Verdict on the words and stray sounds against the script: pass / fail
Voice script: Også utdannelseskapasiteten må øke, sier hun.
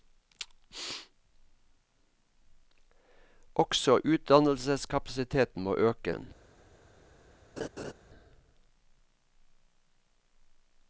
fail